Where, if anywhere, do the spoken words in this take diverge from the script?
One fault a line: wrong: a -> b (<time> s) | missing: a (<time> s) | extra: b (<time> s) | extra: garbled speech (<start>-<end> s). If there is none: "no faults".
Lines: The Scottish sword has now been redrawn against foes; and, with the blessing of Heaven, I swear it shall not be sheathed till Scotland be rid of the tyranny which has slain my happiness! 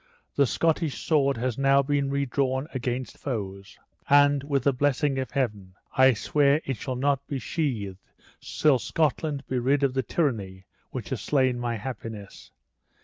no faults